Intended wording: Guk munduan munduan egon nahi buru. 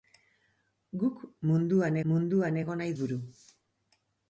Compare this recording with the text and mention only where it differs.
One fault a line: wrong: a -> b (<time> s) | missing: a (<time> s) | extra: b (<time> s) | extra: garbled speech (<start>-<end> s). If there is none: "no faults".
no faults